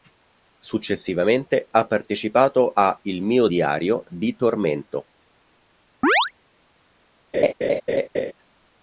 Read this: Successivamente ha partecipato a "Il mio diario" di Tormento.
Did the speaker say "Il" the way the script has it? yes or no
yes